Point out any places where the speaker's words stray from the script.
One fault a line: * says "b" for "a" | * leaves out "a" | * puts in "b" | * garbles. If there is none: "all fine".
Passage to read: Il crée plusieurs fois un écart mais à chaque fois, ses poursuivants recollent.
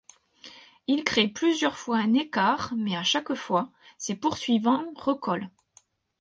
all fine